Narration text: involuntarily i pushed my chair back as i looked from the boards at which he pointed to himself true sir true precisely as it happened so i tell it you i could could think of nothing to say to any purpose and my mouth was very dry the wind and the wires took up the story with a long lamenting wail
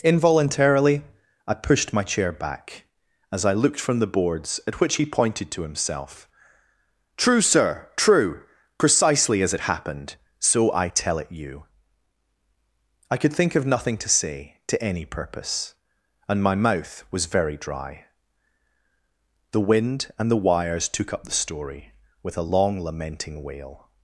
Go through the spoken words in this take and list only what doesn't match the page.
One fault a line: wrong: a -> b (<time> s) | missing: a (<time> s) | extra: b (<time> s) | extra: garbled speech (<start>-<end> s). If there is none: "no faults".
missing: could (13.3 s)